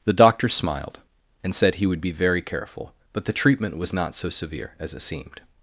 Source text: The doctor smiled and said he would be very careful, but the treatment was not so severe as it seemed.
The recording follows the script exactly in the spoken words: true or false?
true